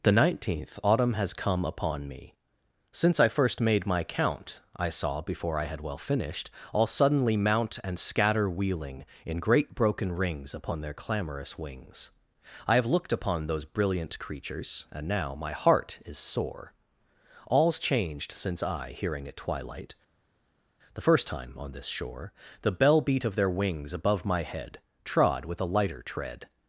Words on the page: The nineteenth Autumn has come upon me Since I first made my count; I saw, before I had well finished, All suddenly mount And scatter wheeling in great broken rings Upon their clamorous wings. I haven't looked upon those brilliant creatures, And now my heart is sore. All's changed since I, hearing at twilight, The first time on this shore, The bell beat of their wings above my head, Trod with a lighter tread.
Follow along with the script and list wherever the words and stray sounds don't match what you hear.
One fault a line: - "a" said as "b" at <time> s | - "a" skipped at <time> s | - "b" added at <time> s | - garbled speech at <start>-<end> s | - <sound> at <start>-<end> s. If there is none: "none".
- "haven't" said as "have" at 12.8 s